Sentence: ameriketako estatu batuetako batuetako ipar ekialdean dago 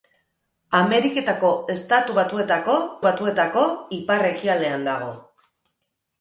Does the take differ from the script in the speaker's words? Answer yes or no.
no